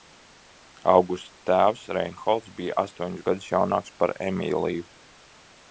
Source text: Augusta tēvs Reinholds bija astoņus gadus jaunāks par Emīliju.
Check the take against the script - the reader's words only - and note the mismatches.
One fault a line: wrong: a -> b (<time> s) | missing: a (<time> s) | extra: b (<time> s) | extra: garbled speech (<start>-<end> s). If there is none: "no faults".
no faults